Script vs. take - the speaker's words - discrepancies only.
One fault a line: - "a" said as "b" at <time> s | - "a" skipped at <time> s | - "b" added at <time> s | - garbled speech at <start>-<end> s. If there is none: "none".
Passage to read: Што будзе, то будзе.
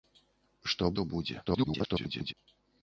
- "будзе" skipped at 0.9 s
- garbled speech at 1.5-2.3 s